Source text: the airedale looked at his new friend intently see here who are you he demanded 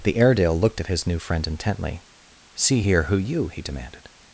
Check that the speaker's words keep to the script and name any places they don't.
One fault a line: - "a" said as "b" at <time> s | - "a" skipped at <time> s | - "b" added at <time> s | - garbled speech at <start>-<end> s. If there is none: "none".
- "are" skipped at 3.2 s